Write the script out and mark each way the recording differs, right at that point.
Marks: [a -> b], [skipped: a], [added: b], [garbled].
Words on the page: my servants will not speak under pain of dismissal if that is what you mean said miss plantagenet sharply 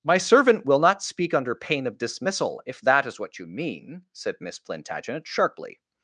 my [servants -> servant] will not speak under pain of dismissal if that is what you mean said miss plantagenet sharply